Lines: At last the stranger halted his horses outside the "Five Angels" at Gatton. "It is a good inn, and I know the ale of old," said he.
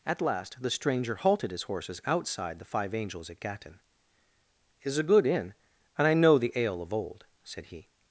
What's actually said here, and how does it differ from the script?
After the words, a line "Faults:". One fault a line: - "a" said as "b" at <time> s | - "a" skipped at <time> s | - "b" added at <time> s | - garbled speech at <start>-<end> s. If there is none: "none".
At last the stranger halted his horses outside the "Five Angels" at Gatton. "It is a good inn, and I know the ale of old," said he.
Faults:
none